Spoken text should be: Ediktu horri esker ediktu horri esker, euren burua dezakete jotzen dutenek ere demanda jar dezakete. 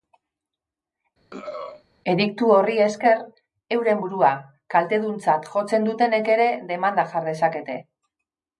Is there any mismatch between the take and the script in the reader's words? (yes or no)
yes